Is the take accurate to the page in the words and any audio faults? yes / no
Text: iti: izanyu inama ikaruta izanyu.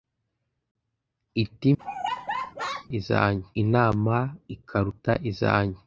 no